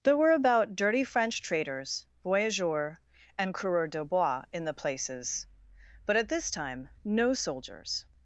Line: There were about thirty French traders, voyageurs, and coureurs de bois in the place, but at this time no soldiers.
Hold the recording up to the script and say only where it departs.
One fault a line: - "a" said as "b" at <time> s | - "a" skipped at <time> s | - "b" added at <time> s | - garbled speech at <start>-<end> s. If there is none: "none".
- "thirty" said as "dirty" at 0.8 s
- "place" said as "places" at 4.7 s